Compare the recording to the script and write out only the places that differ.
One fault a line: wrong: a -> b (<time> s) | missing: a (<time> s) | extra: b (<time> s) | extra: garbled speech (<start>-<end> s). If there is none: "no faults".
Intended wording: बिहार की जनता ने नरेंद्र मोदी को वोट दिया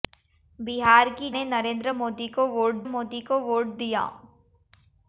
missing: जनता (1.3 s)
extra: मोदी को वोट (2.9 s)